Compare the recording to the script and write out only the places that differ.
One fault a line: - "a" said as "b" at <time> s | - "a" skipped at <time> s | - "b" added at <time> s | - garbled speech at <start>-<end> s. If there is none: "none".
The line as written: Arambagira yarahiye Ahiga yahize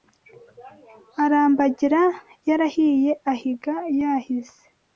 none